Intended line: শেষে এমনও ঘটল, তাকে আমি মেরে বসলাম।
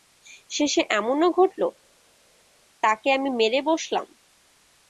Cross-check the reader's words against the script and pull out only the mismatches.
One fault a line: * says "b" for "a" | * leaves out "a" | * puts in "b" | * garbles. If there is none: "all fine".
all fine